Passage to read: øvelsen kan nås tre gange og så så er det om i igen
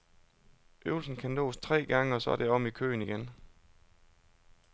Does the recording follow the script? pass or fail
fail